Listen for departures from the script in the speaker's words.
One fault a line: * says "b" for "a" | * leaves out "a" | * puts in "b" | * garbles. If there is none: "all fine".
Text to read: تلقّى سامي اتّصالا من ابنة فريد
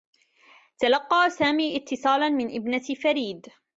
all fine